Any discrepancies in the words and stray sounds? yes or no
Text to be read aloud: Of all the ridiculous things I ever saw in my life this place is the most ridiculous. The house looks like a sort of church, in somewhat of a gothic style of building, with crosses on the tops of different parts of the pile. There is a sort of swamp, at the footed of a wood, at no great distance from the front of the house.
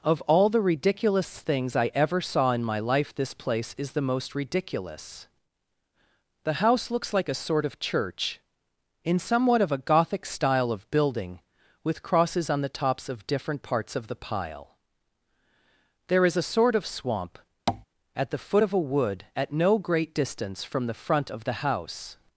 yes